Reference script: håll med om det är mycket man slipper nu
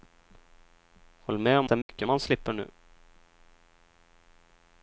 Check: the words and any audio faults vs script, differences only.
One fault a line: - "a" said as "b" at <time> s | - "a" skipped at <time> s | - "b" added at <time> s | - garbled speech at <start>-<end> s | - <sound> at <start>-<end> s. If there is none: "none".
- dropout at 1.8-1.9 s